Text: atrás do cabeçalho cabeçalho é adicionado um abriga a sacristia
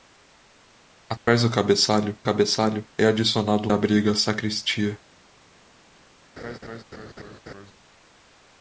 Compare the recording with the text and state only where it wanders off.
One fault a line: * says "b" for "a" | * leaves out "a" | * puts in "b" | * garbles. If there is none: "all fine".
all fine